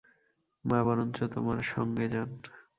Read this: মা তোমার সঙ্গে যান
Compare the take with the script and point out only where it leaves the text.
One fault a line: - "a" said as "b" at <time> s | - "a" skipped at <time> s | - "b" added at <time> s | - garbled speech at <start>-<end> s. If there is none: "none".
- "বরঞ্চ" added at 0.9 s